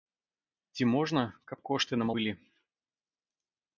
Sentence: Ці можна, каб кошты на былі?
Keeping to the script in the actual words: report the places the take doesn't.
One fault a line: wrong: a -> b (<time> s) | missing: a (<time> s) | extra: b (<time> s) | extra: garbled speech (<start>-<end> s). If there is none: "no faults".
no faults